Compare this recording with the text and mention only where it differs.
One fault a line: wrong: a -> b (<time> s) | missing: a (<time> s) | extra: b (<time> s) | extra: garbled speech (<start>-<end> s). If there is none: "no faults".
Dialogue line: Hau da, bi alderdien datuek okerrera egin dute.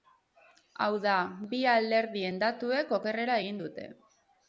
no faults